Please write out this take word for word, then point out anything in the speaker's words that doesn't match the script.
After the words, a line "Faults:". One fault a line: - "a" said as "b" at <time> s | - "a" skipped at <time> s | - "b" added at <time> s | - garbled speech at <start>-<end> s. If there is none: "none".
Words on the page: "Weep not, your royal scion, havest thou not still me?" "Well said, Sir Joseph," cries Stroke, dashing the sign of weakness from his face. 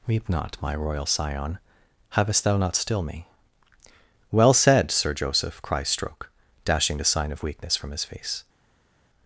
"Weep not, my royal scion, havest thou not still me?" "Well said, Sir Joseph," cries Stroke, dashing the sign of weakness from his face.
Faults:
- "your" said as "my" at 0.6 s